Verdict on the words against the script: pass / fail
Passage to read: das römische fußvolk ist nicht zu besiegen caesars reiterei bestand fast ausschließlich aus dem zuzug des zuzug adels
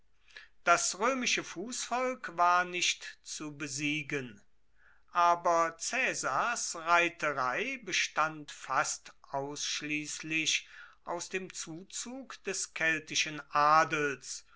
fail